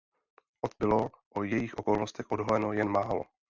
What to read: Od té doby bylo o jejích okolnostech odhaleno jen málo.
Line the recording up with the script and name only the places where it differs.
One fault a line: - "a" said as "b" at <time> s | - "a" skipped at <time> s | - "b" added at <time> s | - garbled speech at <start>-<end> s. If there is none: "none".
- "té doby" skipped at 0.8 s